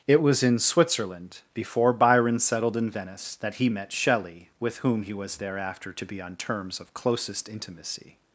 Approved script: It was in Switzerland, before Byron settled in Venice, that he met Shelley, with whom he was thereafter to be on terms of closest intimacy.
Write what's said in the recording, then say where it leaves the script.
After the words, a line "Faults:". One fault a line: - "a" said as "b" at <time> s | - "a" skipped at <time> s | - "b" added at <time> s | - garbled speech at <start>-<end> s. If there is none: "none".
It was in Switzerland, before Byron settled in Venice, that he met Shelley, with whom he was thereafter to be on terms of closest intimacy.
Faults:
none